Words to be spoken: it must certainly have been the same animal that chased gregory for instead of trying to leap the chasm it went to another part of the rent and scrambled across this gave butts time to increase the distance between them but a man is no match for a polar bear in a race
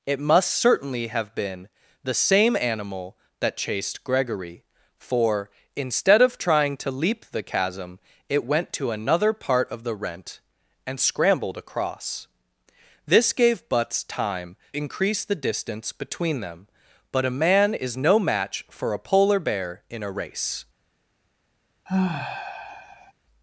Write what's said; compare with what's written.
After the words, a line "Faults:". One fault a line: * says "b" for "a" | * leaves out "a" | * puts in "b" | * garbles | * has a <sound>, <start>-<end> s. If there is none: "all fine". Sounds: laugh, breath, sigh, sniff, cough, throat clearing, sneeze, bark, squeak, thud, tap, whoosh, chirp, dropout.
it must certainly have been the same animal that chased gregory for instead of trying to leap the chasm it went to another part of the rent and scrambled across this gave butts time increase the distance between them but a man is no match for a polar bear in a race
Faults:
* leaves out "to"
* has a sigh, 21.9-23.1 s